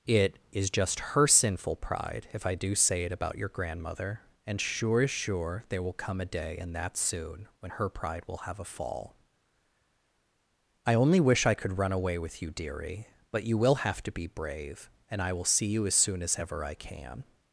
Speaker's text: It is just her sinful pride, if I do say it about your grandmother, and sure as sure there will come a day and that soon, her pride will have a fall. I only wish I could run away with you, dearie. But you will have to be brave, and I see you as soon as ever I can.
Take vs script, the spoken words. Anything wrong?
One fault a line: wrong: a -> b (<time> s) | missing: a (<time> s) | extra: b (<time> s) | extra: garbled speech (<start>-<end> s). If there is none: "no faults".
extra: when (7.6 s)
extra: will (15.3 s)